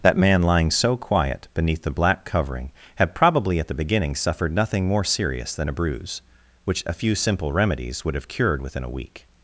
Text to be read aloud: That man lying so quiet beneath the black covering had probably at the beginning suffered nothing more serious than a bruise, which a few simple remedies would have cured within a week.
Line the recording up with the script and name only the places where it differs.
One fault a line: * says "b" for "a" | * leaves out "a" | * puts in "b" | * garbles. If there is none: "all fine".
all fine